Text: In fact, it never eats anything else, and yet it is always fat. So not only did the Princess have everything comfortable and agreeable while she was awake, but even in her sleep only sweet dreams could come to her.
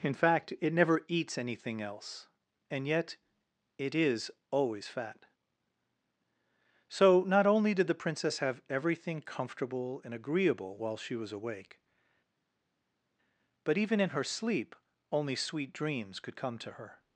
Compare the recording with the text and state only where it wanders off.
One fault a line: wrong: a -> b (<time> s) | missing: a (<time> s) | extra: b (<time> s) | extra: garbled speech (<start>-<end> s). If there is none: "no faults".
no faults